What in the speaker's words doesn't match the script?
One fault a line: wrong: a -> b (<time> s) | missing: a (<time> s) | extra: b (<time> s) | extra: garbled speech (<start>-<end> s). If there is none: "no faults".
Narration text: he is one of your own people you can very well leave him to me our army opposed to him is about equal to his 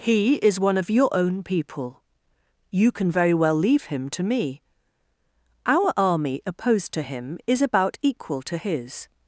no faults